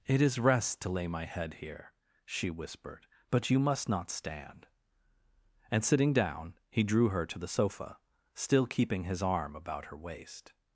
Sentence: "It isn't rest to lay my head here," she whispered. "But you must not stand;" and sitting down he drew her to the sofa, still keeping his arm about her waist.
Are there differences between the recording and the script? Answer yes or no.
yes